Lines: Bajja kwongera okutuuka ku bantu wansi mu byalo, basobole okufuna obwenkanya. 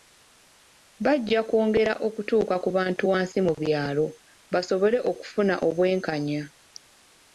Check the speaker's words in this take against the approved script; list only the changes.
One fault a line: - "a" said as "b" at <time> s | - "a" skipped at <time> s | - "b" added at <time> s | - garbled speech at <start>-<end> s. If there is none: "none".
none